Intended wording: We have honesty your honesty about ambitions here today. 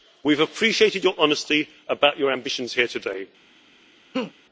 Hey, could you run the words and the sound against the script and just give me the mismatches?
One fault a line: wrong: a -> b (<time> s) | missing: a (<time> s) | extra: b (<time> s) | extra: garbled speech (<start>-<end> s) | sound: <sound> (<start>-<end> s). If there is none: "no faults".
wrong: honesty -> appreciated (0.4 s)
extra: your (2.2 s)
sound: laugh (4.1-4.3 s)